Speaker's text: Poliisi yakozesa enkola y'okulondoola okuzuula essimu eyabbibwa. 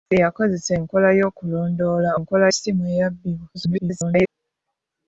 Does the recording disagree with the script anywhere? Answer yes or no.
yes